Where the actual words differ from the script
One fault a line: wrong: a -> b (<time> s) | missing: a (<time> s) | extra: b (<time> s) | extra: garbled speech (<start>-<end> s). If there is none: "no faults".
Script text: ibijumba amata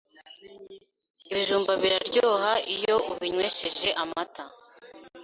extra: biraryoha iyo ubinywesheje (1.8 s)